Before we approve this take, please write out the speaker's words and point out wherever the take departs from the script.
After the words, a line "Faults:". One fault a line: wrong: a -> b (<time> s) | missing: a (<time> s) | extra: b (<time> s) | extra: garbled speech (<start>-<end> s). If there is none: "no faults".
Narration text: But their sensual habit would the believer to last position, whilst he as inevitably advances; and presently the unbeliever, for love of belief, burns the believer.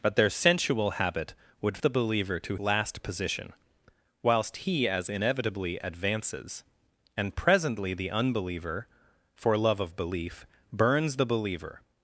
But their sensual habit would the believer to last position, whilst he as inevitably advances; and presently the unbeliever, for love of belief, burns the believer.
Faults:
no faults